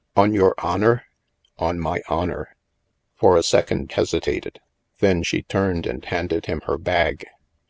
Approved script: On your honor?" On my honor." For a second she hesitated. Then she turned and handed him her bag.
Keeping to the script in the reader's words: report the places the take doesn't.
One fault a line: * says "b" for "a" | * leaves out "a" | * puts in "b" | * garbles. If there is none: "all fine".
* leaves out "she"